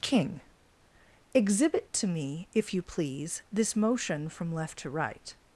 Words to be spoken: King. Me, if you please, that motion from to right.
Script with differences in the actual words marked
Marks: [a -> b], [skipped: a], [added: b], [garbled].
King. [added: Exhibit to] Me, if you please, [that -> this] motion from [added: left] to right.